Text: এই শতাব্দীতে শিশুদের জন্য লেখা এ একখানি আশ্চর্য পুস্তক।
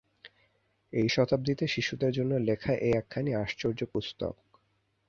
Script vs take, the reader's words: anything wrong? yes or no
no